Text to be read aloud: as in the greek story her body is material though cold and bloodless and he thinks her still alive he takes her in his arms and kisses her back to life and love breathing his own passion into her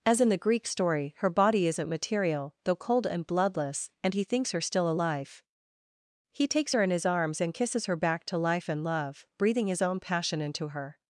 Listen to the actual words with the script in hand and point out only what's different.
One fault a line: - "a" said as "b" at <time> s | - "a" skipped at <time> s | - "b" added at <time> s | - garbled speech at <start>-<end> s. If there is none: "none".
- "is" said as "isn't" at 1.7 s